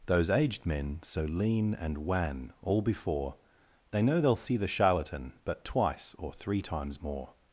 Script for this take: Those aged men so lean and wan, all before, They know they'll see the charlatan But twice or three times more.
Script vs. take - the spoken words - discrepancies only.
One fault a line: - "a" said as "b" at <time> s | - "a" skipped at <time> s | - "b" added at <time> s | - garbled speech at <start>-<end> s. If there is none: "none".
none